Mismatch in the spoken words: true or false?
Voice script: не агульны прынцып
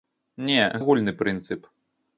false